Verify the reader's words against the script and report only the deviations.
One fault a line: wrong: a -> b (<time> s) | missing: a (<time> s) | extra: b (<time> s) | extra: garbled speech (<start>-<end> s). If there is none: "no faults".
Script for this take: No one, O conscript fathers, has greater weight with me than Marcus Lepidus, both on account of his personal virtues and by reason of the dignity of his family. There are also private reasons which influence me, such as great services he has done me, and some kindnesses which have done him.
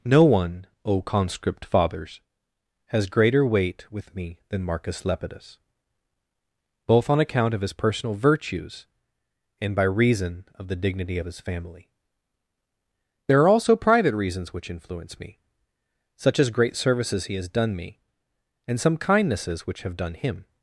no faults